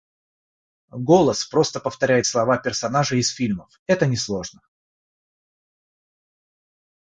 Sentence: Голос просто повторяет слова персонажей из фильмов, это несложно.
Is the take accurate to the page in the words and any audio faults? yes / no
yes